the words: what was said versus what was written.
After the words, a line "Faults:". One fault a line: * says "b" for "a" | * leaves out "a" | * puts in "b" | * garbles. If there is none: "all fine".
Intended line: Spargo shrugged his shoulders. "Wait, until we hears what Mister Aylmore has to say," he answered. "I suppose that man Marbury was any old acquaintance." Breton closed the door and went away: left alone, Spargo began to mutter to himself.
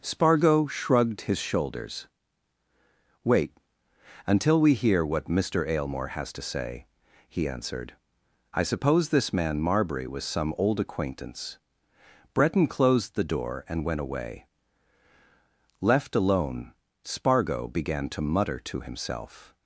Spargo shrugged his shoulders. "Wait, until we hear what Mister Aylmore has to say," he answered. "I suppose this man Marbury was some old acquaintance." Breton closed the door and went away: left alone, Spargo began to mutter to himself.
Faults:
* says "hear" for "hears"
* says "this" for "that"
* says "some" for "any"